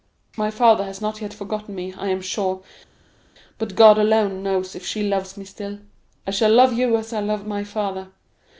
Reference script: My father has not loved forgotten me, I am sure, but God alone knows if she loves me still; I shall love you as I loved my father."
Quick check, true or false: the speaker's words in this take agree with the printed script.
false